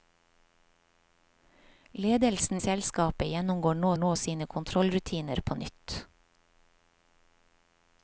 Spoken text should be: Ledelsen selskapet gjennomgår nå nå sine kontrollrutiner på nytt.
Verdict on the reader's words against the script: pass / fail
pass